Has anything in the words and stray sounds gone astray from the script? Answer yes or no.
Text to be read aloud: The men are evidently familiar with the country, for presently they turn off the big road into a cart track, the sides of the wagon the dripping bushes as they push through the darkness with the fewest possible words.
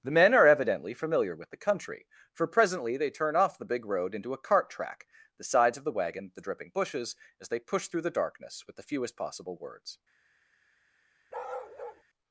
yes